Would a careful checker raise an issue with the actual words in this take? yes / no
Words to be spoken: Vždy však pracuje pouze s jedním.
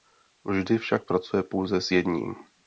no